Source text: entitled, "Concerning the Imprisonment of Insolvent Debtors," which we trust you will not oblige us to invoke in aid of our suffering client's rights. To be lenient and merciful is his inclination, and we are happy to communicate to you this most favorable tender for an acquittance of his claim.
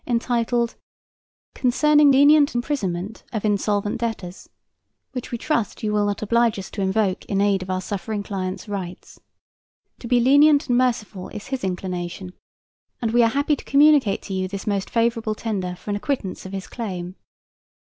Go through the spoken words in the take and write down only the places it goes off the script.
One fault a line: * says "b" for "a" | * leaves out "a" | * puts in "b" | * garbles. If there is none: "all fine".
* says "lenient" for "the"